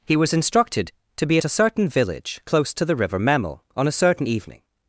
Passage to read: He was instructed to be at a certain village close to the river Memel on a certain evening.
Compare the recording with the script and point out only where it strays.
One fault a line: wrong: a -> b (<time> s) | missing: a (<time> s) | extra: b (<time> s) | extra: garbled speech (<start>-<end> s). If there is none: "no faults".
no faults